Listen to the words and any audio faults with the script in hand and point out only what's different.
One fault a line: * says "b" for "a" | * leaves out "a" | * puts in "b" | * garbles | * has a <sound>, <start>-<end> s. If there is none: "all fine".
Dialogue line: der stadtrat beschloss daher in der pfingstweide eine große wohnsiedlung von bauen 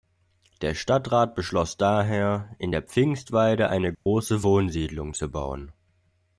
* has a dropout, 3.9-4.1 s
* says "zu" for "von"